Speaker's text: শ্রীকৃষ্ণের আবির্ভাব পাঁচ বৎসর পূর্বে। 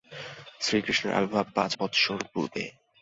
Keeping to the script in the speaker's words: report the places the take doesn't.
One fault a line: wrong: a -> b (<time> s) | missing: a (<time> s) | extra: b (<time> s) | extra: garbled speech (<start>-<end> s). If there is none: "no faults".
no faults